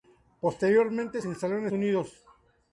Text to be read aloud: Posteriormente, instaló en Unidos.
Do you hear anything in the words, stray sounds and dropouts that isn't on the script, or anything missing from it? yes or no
no